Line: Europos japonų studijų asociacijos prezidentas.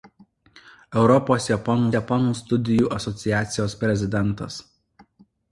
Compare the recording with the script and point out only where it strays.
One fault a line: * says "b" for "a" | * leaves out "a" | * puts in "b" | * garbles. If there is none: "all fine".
* puts in "japonų"